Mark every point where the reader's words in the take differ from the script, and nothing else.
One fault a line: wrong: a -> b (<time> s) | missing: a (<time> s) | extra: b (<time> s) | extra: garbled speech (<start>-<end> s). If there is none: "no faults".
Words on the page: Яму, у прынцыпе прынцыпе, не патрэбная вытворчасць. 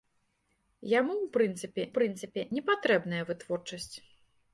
no faults